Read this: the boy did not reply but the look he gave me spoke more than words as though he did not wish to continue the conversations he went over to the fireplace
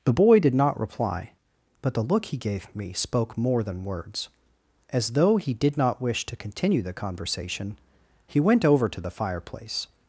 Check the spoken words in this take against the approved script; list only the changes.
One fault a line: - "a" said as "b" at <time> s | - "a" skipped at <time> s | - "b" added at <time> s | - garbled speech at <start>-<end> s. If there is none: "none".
- "conversations" said as "conversation" at 6.9 s